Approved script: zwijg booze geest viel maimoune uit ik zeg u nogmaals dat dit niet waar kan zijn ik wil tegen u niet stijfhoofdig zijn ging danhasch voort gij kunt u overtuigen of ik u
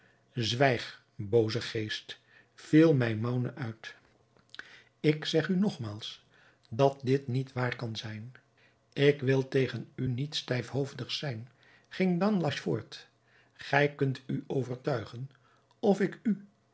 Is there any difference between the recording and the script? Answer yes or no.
no